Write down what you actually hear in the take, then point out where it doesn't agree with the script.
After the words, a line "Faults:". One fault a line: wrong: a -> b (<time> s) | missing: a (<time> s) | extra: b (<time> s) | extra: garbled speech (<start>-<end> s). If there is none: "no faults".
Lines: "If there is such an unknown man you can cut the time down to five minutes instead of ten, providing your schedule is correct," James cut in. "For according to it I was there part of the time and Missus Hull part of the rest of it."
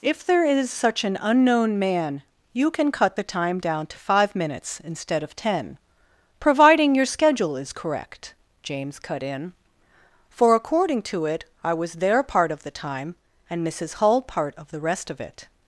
"If there is such an unknown man you can cut the time down to five minutes instead of ten, providing your schedule is correct," James cut in. "For according to it I was there part of the time and Missus Hull part of the rest of it."
Faults:
no faults